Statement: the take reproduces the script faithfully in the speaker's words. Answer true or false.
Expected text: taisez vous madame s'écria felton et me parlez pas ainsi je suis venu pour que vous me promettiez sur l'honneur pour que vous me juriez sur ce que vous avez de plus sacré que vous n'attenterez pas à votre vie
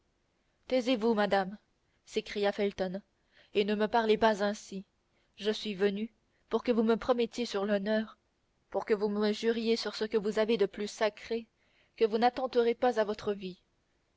false